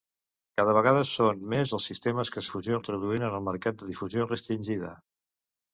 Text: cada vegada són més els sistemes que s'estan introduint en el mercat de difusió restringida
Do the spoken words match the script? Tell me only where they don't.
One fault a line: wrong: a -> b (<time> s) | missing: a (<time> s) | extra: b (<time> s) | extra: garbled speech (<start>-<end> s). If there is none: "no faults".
wrong: s'estan -> difusió (2.5 s)